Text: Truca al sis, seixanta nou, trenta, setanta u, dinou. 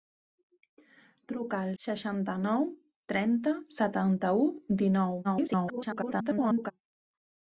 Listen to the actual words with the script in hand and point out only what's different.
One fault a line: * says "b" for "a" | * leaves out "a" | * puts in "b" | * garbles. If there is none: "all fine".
* leaves out "sis"
* garbles